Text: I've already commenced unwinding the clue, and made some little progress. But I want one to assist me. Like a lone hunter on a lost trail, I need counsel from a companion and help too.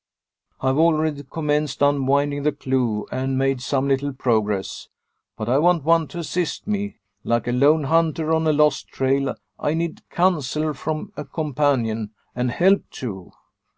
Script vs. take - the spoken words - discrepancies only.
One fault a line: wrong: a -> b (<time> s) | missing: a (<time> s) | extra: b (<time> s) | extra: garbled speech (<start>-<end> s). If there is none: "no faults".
no faults